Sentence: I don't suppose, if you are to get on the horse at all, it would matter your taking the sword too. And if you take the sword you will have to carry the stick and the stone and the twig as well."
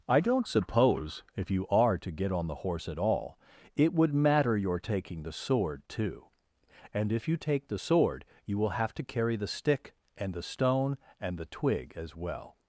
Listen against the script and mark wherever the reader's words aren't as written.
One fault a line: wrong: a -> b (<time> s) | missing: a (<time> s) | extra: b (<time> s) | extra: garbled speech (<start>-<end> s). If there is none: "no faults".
no faults